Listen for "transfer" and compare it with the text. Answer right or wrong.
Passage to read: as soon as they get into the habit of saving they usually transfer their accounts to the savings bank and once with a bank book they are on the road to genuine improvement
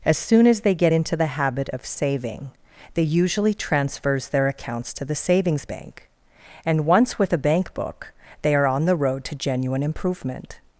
wrong